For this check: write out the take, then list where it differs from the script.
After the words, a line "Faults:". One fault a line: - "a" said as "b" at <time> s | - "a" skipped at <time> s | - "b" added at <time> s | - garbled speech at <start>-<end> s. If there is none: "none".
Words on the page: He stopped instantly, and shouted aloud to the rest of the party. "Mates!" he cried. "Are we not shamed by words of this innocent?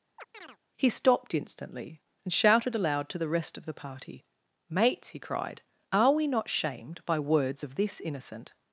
He stopped instantly, and shouted aloud to the rest of the party. "Mates!" he cried. "Are we not shamed by words of this innocent?
Faults:
none